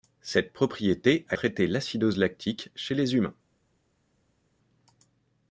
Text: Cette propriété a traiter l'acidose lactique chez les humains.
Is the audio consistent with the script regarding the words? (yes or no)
yes